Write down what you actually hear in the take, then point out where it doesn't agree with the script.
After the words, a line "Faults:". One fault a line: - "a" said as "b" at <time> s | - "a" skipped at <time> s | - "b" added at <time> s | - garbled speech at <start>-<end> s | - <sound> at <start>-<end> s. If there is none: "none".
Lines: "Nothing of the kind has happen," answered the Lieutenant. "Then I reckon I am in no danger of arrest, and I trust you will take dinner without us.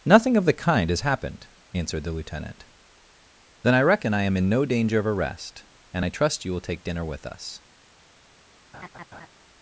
"Nothing of the kind has happened," answered the Lieutenant. "Then I reckon I am in no danger of arrest, and I trust you will take dinner with us.
Faults:
- "happen" said as "happened" at 1.0 s
- "without" said as "with" at 7.0 s
- laugh at 8.7-9.3 s